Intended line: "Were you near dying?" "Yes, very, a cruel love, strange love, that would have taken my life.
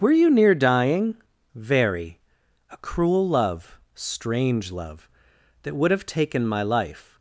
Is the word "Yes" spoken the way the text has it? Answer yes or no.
no